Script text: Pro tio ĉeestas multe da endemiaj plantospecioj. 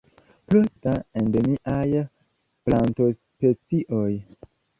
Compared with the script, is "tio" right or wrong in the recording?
wrong